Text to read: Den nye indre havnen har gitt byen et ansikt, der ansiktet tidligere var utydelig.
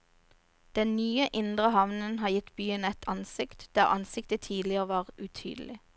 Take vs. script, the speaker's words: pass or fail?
pass